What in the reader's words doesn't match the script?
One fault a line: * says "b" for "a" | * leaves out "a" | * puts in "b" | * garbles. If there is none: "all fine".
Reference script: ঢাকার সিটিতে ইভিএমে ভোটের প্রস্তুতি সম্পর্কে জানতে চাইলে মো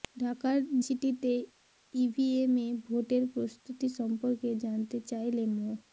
all fine